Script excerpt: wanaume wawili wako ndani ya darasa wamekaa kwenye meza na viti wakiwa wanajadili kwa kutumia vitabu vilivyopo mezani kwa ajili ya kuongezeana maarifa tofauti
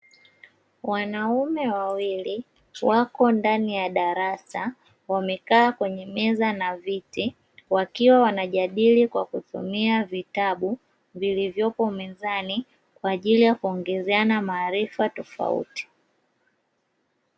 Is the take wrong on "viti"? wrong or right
right